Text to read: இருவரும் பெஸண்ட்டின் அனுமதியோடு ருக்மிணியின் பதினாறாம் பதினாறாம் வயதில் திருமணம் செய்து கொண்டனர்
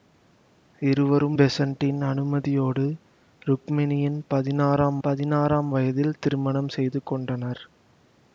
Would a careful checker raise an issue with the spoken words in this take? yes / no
no